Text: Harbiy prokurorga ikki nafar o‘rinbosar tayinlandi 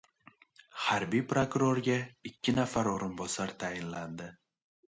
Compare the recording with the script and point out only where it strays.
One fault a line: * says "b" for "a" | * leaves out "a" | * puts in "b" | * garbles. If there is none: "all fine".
all fine